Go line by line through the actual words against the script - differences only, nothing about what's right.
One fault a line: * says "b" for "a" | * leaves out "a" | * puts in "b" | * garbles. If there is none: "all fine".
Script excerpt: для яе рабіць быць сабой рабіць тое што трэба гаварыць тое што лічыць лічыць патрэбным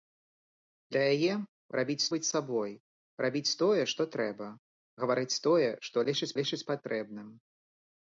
all fine